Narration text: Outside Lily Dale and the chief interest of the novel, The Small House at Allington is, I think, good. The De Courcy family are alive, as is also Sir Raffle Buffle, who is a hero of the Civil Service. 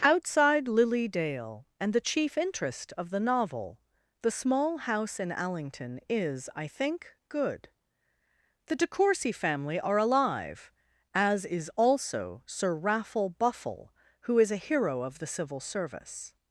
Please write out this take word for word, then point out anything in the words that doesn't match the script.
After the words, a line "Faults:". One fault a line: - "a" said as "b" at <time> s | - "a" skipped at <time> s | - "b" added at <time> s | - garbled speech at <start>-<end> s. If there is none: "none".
Outside Lily Dale and the chief interest of the novel, The Small House in Allington is, I think, good. The De Courcy family are alive, as is also Sir Raffle Buffle, who is a hero of the Civil Service.
Faults:
- "at" said as "in" at 5.2 s